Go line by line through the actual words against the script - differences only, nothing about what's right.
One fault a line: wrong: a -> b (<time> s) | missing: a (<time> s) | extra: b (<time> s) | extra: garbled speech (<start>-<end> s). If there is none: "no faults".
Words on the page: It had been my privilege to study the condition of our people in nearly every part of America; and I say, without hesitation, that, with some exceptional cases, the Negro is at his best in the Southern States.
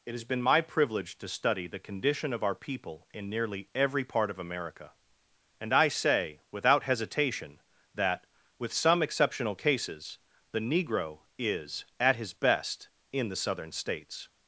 wrong: had -> has (0.1 s)